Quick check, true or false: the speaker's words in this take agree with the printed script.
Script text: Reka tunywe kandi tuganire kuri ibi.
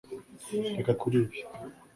false